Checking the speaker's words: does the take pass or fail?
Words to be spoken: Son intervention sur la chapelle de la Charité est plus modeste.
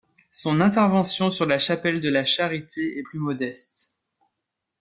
pass